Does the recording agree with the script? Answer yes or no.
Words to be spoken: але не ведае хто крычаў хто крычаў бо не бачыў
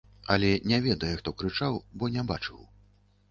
no